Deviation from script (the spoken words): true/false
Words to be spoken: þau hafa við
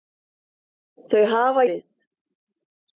false